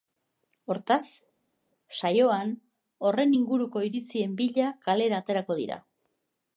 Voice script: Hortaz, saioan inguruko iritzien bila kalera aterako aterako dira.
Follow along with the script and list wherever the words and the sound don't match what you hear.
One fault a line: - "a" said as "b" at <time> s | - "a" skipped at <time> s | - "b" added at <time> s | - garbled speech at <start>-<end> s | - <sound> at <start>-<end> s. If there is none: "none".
- "horren" added at 3.1 s
- "aterako" skipped at 5.6 s